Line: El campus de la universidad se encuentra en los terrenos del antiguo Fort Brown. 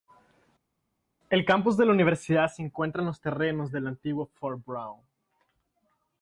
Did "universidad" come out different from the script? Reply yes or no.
no